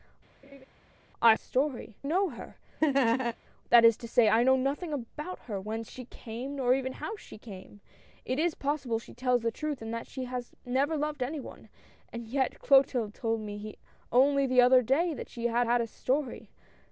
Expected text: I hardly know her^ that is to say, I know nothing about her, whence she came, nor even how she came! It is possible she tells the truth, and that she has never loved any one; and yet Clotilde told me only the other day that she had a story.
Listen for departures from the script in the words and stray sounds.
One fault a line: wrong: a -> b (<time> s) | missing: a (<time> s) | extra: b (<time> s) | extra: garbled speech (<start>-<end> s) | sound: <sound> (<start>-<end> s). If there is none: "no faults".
sound: laugh (0.4-0.7 s)
wrong: hardly -> story (1.3 s)
sound: laugh (2.8-3.4 s)
extra: had (15.6 s)